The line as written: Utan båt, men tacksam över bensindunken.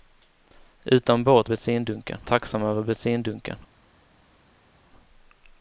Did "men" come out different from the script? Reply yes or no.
yes